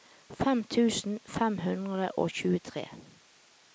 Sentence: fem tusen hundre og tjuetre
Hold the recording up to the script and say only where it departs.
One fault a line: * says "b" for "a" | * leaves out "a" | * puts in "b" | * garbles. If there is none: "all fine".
* puts in "fem"